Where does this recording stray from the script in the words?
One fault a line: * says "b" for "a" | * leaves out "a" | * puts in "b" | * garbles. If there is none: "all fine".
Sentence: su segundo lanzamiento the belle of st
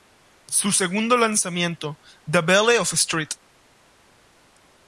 all fine